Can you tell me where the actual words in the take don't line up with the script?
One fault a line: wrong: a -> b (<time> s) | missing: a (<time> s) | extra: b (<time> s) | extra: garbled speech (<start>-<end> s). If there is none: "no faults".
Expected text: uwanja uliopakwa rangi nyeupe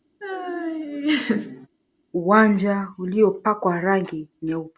no faults